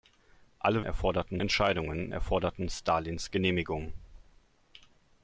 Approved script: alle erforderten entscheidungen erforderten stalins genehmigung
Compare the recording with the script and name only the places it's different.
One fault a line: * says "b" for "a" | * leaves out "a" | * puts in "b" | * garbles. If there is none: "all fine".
all fine